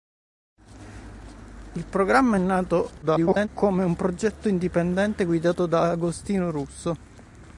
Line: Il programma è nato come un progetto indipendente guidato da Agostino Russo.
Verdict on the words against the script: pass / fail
fail